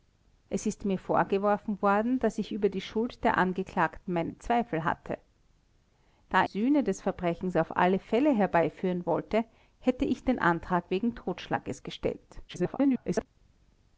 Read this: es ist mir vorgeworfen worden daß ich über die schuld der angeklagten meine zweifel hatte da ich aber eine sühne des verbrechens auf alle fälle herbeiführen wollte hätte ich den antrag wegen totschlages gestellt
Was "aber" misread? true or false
true